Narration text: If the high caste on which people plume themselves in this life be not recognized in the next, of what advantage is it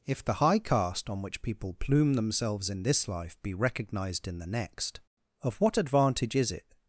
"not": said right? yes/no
no